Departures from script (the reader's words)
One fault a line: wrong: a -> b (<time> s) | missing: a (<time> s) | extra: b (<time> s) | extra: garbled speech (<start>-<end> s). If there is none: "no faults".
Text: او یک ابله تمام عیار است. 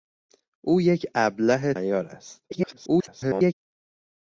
missing: تمام (1.7 s)
extra: garbled speech (2.5-3.5 s)